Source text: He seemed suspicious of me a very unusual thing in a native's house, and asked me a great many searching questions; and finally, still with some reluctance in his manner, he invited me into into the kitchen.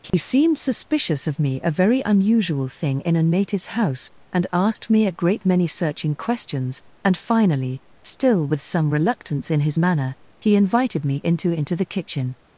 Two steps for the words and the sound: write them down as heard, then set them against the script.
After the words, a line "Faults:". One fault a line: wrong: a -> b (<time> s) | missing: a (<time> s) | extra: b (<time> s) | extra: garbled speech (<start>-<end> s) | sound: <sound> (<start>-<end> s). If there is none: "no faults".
He seemed suspicious of me a very unusual thing in a native's house, and asked me a great many searching questions; and finally, still with some reluctance in his manner, he invited me into into the kitchen.
Faults:
sound: dropout (0.1-0.1 s)